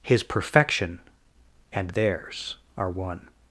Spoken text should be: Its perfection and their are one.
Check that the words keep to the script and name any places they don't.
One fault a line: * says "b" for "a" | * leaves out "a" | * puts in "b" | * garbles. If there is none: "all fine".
* says "His" for "Its"
* says "theirs" for "their"